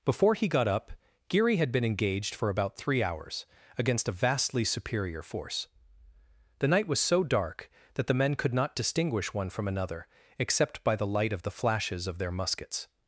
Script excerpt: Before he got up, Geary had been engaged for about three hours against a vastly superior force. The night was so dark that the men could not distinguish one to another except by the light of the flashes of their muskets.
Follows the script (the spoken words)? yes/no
no